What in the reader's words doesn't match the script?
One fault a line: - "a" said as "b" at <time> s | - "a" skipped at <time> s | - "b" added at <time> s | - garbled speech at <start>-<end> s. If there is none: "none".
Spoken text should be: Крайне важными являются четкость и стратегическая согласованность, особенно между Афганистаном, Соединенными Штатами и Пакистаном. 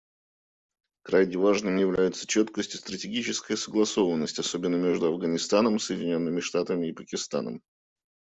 none